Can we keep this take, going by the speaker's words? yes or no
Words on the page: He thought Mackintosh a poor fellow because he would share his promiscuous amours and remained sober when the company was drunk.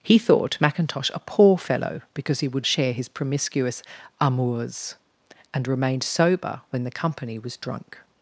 yes